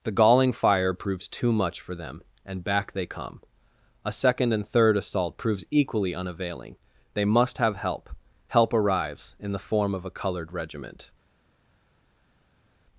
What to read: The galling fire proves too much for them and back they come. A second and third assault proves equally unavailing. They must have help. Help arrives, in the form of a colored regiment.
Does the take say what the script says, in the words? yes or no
yes